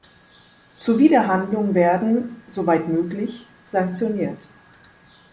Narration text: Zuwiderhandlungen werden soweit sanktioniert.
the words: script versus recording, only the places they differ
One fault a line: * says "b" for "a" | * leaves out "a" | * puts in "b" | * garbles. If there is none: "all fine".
* puts in "möglich"